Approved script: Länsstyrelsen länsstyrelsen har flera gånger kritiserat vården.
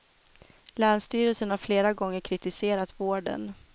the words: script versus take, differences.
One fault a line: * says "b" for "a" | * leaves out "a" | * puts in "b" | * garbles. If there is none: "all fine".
* leaves out "länsstyrelsen"